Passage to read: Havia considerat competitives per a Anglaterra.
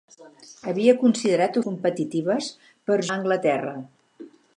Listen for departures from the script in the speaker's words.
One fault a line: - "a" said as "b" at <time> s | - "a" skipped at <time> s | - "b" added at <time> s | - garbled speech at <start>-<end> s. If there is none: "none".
none